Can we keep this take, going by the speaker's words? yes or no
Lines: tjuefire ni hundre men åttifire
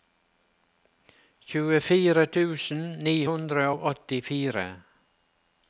no